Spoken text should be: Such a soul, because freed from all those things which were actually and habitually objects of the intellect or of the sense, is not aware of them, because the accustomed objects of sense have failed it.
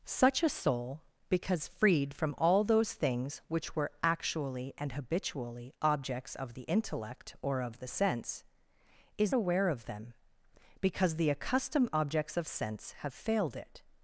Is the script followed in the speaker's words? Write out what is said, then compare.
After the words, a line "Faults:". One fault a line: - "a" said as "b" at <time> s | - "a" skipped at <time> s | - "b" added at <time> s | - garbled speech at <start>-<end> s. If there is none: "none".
Such a soul, because freed from all those things which were actually and habitually objects of the intellect or of the sense, is aware of them, because the accustomed objects of sense have failed it.
Faults:
- "not" skipped at 9.3 s